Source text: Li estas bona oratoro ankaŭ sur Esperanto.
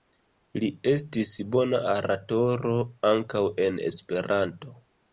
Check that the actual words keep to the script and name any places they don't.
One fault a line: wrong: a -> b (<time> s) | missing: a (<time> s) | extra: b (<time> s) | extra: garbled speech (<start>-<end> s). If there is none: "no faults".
wrong: estas -> estis (0.9 s)
wrong: sur -> en (3.7 s)